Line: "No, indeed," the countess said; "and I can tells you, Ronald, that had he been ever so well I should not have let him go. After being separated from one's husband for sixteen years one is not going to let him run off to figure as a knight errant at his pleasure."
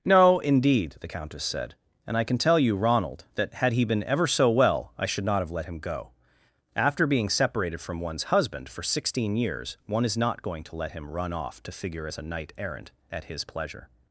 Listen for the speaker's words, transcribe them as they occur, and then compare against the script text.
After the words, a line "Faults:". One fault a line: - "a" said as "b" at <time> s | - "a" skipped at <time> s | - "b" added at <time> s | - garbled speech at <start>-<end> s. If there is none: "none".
"No, indeed," the countess said; "and I can tell you, Ronald, that had he been ever so well I should not have let him go. After being separated from one's husband for sixteen years one is not going to let him run off to figure as a knight errant at his pleasure."
Faults:
- "tells" said as "tell" at 2.4 s